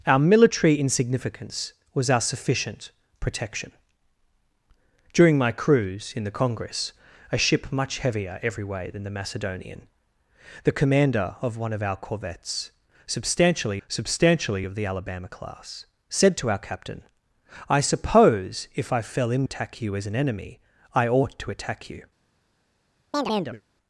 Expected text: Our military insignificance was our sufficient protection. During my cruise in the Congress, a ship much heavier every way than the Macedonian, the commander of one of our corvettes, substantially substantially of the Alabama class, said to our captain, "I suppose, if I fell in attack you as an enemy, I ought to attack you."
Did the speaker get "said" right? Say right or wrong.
right